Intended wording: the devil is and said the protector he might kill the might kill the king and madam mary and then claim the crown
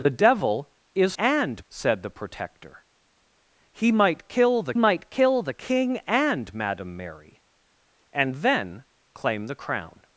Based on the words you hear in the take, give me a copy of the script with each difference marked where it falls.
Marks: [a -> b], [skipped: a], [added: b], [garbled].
the devil is and said the protector he might kill the might kill the king and madam mary and then claim the crown